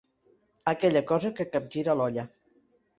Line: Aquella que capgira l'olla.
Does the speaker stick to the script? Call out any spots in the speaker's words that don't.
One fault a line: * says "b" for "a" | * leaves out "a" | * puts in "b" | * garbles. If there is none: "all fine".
* puts in "cosa"